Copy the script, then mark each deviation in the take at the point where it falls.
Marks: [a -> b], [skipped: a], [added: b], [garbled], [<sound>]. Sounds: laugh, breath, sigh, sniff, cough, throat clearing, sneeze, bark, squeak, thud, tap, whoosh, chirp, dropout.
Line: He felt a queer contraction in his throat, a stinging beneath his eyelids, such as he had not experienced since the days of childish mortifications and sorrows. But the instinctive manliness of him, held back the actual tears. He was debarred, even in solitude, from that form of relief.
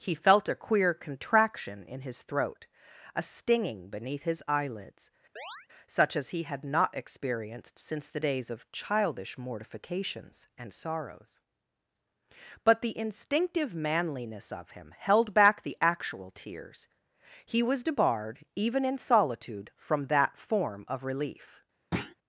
He felt a queer contraction in his throat, a stinging beneath his eyelids, [chirp] such as he had not experienced since the days of childish mortifications and sorrows. But the instinctive manliness of him, held back the actual tears. He was debarred, even in solitude, from that form of relief. [thud]